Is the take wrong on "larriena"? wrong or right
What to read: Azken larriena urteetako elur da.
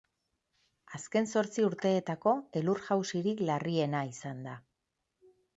wrong